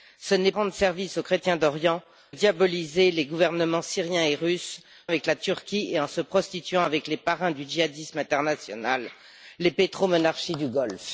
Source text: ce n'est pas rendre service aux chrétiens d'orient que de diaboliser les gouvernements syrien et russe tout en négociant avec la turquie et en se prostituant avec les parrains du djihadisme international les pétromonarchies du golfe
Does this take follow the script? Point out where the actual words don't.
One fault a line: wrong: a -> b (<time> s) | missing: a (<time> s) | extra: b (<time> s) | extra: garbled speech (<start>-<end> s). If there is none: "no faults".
missing: pas (0.5 s)
missing: que de (2.0 s)
missing: tout en négociant (4.8 s)